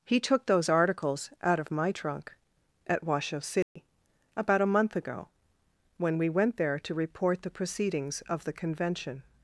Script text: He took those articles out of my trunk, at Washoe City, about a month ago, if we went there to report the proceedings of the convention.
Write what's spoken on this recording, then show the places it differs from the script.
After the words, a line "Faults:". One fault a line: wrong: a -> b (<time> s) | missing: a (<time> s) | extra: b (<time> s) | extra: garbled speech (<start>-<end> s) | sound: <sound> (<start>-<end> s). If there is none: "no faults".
He took those articles out of my trunk, at Washoe City, about a month ago, when we went there to report the proceedings of the convention.
Faults:
sound: dropout (3.6-3.8 s)
wrong: if -> when (6.0 s)